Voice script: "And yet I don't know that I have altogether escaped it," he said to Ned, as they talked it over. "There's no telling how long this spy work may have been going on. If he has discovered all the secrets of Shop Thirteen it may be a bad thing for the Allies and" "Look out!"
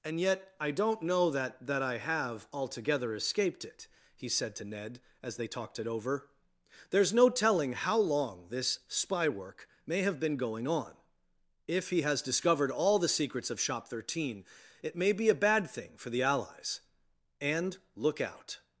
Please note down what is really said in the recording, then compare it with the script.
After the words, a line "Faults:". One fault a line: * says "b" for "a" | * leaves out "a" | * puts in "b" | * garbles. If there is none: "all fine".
"And yet I don't know that that I have altogether escaped it," he said to Ned, as they talked it over. "There's no telling how long this spy work may have been going on. If he has discovered all the secrets of Shop Thirteen it may be a bad thing for the Allies and" "Look out!"
Faults:
* puts in "that"